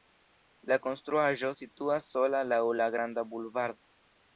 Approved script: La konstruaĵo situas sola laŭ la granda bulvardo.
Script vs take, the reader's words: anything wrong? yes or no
no